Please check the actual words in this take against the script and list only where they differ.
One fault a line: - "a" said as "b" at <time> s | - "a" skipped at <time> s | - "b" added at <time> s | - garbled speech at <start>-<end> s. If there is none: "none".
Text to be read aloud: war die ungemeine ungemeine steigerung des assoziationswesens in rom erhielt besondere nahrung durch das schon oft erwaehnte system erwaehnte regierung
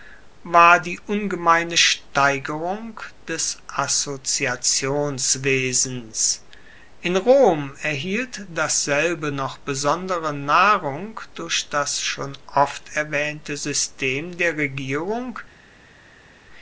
- "ungemeine" skipped at 1.8 s
- "dasselbe noch" added at 8.5 s
- "erwaehnte" said as "der" at 14.4 s